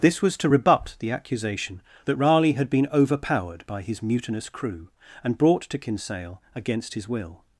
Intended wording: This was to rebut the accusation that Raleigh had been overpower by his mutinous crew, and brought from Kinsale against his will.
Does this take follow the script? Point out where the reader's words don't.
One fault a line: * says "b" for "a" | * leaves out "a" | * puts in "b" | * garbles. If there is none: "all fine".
* says "overpowered" for "overpower"
* says "to" for "from"